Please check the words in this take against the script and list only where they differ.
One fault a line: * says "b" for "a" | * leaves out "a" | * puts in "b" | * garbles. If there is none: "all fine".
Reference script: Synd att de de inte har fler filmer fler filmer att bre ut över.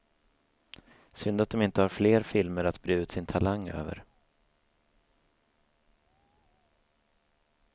* leaves out "de"
* leaves out "fler filmer"
* puts in "sin talang"